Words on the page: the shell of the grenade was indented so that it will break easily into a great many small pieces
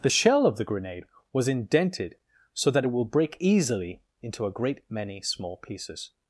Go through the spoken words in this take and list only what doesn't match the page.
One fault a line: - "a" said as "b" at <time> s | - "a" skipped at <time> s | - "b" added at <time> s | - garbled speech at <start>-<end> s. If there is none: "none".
none